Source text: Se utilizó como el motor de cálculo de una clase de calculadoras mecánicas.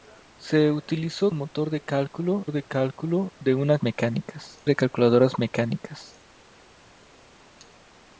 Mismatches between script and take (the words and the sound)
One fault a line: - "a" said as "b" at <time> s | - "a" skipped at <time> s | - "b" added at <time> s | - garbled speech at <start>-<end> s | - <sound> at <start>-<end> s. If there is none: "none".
- "como" skipped at 1.3 s
- "cálculo de" added at 2.6 s
- "clase" said as "mecánicas" at 3.8 s